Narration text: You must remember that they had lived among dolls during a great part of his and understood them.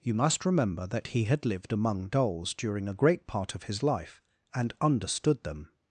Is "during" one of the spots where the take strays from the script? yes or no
no